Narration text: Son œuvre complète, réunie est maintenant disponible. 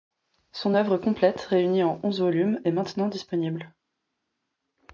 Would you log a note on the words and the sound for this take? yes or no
yes